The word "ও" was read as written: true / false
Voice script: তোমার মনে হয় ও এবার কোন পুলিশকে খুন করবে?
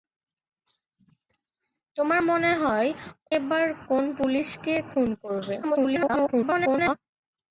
false